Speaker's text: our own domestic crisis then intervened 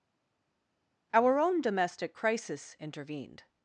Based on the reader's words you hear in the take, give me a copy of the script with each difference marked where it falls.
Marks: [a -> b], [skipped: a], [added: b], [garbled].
our own domestic crisis [skipped: then] intervened